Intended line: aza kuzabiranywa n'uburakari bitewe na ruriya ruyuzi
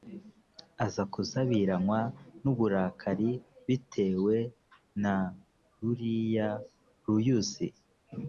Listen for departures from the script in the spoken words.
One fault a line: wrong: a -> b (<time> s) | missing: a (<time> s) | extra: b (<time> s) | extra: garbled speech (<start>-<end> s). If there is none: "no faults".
no faults